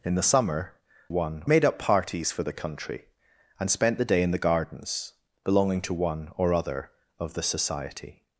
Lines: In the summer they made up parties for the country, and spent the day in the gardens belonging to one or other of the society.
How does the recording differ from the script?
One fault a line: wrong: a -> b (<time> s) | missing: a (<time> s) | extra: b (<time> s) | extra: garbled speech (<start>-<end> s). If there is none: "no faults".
wrong: they -> one (1.1 s)